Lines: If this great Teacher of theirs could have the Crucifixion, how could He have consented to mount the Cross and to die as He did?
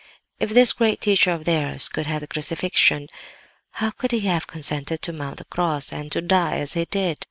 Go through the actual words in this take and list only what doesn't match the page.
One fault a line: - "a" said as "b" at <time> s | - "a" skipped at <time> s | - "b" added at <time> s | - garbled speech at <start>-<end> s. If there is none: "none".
none